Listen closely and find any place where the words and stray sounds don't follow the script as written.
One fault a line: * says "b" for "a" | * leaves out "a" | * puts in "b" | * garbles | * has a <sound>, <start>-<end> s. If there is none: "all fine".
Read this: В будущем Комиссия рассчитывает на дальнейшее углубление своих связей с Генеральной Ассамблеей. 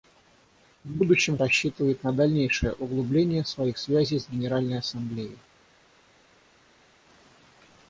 * leaves out "Комиссия"